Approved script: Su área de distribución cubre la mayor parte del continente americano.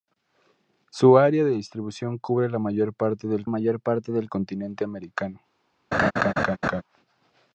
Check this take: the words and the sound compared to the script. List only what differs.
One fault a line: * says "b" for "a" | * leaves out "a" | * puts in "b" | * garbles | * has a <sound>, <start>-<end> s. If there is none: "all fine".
* puts in "mayor parte del"
* has a laugh, 5.9-6.8 s